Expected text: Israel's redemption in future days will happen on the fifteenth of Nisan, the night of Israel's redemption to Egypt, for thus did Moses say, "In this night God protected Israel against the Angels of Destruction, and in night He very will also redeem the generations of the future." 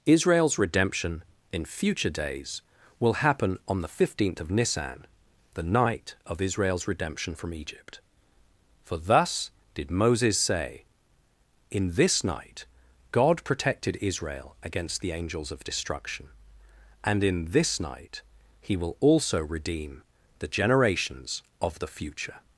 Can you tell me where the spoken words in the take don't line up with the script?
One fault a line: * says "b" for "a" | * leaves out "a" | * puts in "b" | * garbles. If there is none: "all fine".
* says "from" for "to"
* puts in "this"
* leaves out "very"